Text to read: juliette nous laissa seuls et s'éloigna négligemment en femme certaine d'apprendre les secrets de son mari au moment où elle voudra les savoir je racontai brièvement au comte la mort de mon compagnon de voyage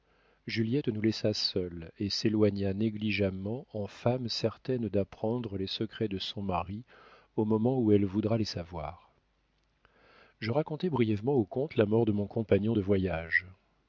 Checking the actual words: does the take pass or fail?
pass